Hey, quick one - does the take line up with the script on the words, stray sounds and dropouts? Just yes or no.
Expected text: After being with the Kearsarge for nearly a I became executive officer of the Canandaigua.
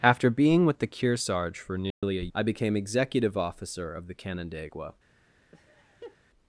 no